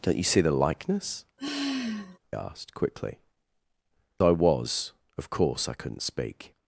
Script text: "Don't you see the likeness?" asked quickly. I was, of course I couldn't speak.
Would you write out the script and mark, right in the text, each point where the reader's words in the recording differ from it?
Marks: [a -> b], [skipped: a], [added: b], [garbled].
"Don't you see the likeness?" asked quickly. I was, of course I couldn't speak.